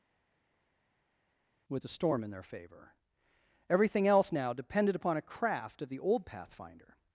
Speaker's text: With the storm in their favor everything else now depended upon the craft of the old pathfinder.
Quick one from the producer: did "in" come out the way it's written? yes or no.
yes